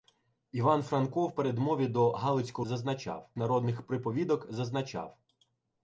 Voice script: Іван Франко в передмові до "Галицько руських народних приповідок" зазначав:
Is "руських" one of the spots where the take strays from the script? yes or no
yes